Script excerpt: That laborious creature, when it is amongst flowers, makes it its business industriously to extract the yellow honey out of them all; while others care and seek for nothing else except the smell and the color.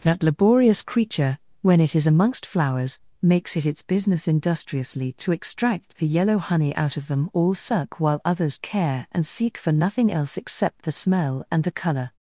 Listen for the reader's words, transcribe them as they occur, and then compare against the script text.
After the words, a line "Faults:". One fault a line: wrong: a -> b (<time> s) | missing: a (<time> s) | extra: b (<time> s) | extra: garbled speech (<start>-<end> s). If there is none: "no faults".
That laborious creature, when it is amongst flowers, makes it its business industriously to extract the yellow honey out of them all; suck while others care and seek for nothing else except the smell and the color.
Faults:
extra: suck (7.5 s)